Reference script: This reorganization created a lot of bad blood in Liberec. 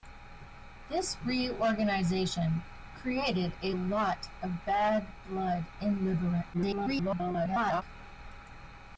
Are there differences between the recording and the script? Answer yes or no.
yes